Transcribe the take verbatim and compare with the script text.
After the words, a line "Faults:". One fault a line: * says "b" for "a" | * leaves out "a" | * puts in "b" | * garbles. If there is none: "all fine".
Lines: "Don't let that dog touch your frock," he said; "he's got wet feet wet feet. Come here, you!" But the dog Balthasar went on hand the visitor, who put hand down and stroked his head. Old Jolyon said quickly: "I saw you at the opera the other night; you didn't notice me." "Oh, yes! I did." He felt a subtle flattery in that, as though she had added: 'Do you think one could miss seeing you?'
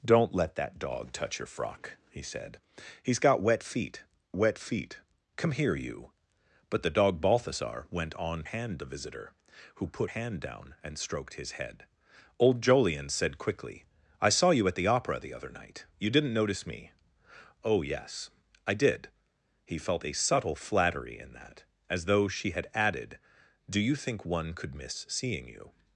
"Don't let that dog touch your frock," he said; "he's got wet feet wet feet. Come here, you!" But the dog Balthasar went on hand the visitor, who put hand down and stroked his head. Old Jolyon said quickly: "I saw you at the opera the other night; you didn't notice me." "Oh, yes! I did." He felt a subtle flattery in that, as though she had added: 'Do you think one could miss seeing you?'
Faults:
all fine